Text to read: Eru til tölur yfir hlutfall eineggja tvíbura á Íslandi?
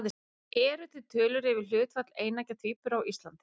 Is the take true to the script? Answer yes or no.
yes